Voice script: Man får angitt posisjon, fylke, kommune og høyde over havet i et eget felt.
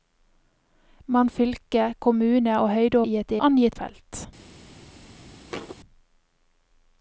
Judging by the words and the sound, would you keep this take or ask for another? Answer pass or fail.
fail